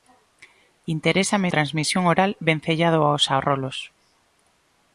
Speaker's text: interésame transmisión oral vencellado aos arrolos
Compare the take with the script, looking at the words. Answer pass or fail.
pass